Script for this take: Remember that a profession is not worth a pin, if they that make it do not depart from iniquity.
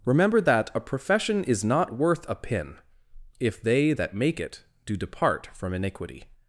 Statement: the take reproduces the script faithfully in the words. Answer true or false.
false